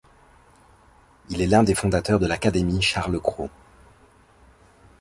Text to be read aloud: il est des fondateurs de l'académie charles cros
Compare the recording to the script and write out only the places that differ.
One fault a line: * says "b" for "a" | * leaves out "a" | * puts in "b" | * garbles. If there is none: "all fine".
* puts in "l'un"